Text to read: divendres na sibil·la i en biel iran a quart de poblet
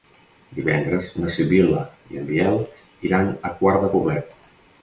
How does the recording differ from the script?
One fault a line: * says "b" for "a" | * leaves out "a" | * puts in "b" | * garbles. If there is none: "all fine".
all fine